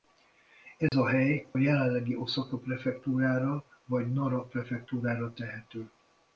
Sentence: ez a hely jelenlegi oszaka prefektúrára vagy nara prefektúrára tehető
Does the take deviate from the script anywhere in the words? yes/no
no